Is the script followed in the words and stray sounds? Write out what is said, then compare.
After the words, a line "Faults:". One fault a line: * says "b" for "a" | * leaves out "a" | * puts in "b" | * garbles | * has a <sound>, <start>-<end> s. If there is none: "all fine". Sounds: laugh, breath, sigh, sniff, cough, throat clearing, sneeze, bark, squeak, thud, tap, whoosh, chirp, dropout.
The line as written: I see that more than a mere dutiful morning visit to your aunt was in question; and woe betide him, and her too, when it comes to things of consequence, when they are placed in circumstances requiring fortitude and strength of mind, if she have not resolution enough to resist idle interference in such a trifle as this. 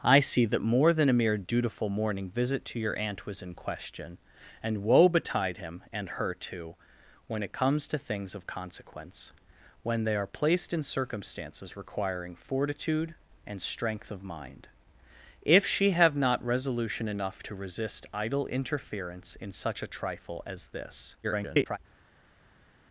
I see that more than a mere dutiful morning visit to your aunt was in question; and woe betide him, and her too, when it comes to things of consequence, when they are placed in circumstances requiring fortitude and strength of mind, if she have not resolution enough to resist idle interference in such a trifle as this. [garbled]
Faults:
* garbles